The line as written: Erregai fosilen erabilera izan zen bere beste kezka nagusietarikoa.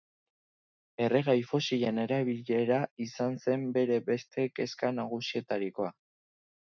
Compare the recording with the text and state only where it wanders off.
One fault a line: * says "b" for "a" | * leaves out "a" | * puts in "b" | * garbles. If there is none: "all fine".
all fine